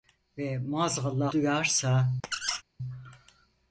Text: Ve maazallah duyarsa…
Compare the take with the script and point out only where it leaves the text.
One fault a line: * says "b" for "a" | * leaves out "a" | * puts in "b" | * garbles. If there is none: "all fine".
all fine